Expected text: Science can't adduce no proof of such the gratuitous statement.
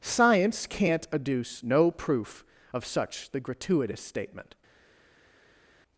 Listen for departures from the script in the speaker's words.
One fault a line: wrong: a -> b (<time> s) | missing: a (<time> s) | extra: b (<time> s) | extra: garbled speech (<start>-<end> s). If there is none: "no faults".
no faults